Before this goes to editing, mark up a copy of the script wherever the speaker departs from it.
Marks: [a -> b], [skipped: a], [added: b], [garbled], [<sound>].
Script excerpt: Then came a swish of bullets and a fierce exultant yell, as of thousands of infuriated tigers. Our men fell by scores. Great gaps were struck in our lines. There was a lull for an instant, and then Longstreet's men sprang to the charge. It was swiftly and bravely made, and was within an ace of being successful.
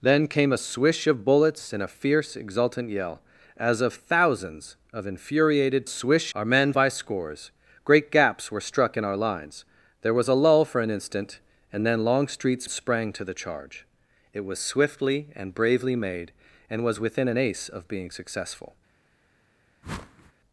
Then came a swish of bullets and a fierce exultant yell, as of thousands of infuriated [tigers. -> swish] Our men [skipped: fell] by scores. Great gaps were struck in our lines. There was a lull for an instant, and then Longstreet's [skipped: men] sprang to the charge. It was swiftly and bravely made, and was within an ace of being successful. [whoosh]